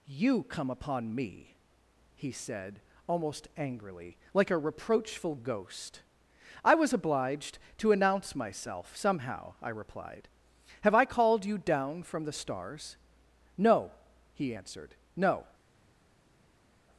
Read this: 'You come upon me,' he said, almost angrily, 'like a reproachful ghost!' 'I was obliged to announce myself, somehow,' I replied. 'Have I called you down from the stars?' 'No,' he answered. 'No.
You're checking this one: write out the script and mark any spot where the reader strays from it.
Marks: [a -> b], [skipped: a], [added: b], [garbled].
'You come upon me,' he said, almost angrily, 'like a reproachful ghost!' 'I was obliged to announce myself, somehow,' I replied. 'Have I called you down from the stars?' 'No,' he answered. 'No.